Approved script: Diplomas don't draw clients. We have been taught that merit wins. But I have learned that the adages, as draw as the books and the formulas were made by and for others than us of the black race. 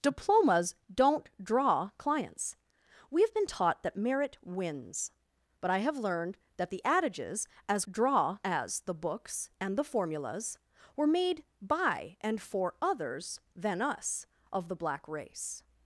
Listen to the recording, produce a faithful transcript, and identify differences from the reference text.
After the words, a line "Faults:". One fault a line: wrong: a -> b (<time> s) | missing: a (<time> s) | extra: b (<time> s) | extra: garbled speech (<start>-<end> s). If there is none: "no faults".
Diplomas don't draw clients. We have been taught that merit wins. But I have learned that the adages, as draw as the books and the formulas were made by and for others than us of the black race.
Faults:
no faults